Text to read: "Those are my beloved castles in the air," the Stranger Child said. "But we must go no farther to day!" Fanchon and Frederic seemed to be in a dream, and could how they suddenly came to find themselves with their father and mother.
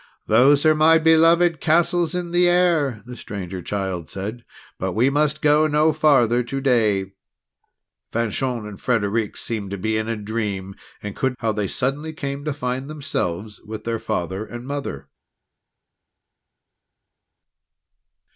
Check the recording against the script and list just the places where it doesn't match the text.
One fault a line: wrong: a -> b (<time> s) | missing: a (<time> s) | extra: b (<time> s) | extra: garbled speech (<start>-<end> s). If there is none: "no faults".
no faults